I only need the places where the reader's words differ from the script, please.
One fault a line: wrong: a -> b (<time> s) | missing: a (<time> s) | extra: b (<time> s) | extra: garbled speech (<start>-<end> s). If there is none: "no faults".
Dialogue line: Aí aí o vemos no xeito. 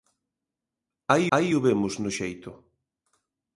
no faults